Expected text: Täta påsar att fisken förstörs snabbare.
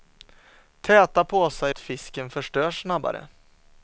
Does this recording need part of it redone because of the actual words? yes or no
no